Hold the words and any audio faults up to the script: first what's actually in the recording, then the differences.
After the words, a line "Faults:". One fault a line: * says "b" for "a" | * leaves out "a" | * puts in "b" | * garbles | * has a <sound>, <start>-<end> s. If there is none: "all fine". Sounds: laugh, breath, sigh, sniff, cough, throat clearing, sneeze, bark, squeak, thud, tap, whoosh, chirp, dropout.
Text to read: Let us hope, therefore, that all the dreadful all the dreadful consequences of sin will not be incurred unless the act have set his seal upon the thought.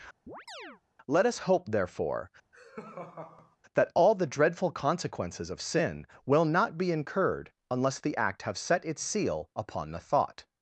Let us hope, therefore, that all the dreadful consequences of sin will not be incurred unless the act have set its seal upon the thought.
Faults:
* has a chirp, 0.3-0.8 s
* has a laugh, 2.5-3.6 s
* leaves out "all the dreadful"
* says "its" for "his"